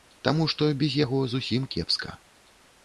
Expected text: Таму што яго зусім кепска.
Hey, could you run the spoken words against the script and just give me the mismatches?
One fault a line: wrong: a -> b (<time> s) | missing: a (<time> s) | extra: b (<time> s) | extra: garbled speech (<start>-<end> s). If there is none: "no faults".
extra: без (0.8 s)